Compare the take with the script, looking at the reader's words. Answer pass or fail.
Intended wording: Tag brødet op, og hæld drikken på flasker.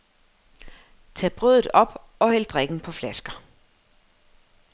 pass